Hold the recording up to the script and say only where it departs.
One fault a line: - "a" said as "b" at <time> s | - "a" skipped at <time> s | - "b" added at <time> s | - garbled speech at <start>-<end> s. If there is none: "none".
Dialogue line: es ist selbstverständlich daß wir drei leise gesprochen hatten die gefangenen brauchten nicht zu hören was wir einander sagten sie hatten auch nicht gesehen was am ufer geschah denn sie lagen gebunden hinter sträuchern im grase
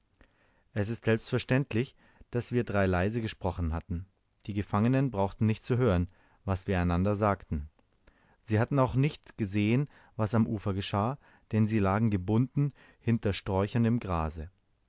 none